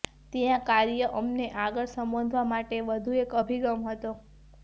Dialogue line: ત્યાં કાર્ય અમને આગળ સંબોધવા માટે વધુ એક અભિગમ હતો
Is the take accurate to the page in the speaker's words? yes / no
yes